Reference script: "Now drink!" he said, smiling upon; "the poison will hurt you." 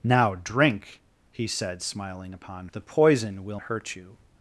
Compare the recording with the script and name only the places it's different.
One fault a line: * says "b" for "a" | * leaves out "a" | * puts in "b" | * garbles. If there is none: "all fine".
all fine